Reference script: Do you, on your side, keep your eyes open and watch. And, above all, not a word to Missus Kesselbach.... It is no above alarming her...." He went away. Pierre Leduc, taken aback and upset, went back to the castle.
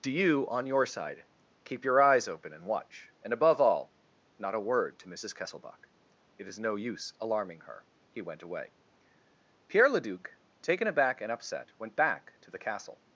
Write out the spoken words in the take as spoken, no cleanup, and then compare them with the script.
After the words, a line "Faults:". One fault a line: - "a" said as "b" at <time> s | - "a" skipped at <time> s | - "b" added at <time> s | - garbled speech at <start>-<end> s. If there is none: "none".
Do you, on your side, keep your eyes open and watch. And, above all, not a word to Missus Kesselbach.... It is no use alarming her...." He went away. Pierre Leduc, taken aback and upset, went back to the castle.
Faults:
- "above" said as "use" at 6.8 s